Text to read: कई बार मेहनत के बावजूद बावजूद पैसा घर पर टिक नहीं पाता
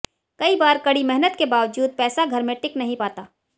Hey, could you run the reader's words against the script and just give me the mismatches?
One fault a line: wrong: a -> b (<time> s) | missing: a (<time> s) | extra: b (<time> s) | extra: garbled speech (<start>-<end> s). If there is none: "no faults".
extra: कड़ी (0.8 s)
missing: बावजूद (1.9 s)
wrong: पर -> में (2.4 s)